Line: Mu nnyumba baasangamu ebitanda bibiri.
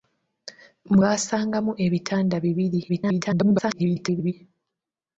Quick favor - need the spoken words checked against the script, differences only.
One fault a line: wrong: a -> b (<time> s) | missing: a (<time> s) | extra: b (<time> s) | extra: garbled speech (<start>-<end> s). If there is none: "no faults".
missing: nnyumba (1.0 s)
extra: garbled speech (2.9-4.3 s)